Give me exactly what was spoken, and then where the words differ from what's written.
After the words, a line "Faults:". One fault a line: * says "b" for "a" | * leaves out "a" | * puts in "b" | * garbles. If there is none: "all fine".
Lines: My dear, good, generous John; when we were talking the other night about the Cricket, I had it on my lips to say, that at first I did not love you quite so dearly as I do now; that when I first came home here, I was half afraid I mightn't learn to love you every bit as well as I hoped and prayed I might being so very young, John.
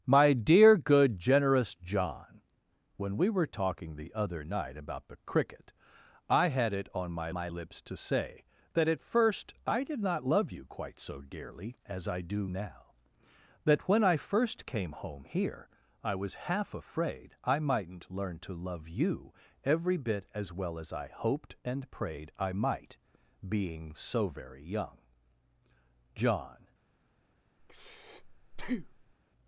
My dear, good, generous John; when we were talking the other night about the Cricket, I had it on my my lips to say, that at first I did not love you quite so dearly as I do now; that when I first came home here, I was half afraid I mightn't learn to love you every bit as well as I hoped and prayed I might being so very young, John.
Faults:
* puts in "my"